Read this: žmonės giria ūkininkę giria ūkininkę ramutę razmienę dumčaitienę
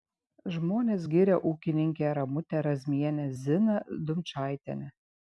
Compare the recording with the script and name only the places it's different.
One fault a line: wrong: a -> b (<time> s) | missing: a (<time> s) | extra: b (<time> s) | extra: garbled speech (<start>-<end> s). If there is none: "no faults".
missing: giria ūkininkę (2.1 s)
extra: ziną (3.4 s)